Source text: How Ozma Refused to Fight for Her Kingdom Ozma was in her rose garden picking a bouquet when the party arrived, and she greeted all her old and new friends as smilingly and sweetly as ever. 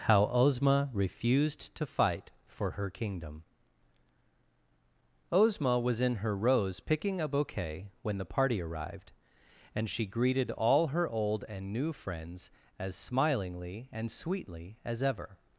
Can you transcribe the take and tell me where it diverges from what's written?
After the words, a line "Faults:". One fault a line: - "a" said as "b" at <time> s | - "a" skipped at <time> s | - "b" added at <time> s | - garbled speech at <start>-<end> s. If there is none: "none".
How Ozma Refused to Fight for Her Kingdom Ozma was in her rose picking a bouquet when the party arrived, and she greeted all her old and new friends as smilingly and sweetly as ever.
Faults:
- "garden" skipped at 6.8 s